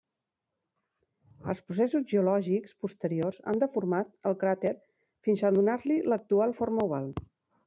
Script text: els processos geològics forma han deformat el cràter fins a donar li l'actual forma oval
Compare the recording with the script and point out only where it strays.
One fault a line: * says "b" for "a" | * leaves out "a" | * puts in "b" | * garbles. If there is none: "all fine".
* says "posteriors" for "forma"